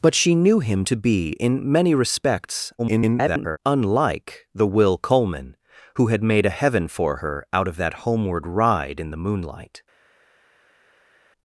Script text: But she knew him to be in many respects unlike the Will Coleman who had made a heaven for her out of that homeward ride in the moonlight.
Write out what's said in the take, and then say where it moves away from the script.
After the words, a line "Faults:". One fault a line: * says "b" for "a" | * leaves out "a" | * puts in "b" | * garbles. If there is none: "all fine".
But she knew him to be in many respects [garbled] unlike the Will Coleman who had made a heaven for her out of that homeward ride in the moonlight.
Faults:
* garbles